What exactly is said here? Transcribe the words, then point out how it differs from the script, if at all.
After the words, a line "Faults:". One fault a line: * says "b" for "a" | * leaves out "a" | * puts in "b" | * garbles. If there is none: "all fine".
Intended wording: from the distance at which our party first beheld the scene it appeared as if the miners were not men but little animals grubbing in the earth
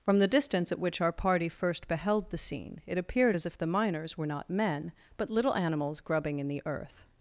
from the distance at which our party first beheld the scene it appeared as if the miners were not men but little animals grubbing in the earth
Faults:
all fine